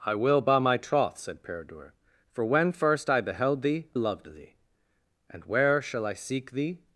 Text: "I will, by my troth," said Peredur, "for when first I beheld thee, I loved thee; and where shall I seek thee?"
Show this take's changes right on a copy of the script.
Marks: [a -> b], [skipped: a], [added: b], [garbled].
"I will, by my troth," said Peredur, "for when first I beheld thee, [skipped: I] loved thee; and where shall I seek thee?"